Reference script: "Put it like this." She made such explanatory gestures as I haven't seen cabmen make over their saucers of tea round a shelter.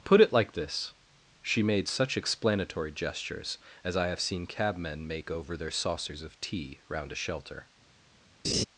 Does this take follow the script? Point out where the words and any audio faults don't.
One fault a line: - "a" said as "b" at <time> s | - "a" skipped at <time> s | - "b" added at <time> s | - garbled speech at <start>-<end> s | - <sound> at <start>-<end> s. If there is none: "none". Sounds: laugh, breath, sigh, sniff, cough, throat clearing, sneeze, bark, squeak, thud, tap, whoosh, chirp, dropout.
- "haven't" said as "have" at 4.1 s
- laugh at 8.4-8.6 s